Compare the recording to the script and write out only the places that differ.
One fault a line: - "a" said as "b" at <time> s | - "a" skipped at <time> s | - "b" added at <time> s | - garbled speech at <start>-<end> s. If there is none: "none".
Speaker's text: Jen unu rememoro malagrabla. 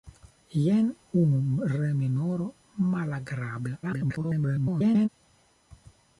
- garbled speech at 3.8-5.1 s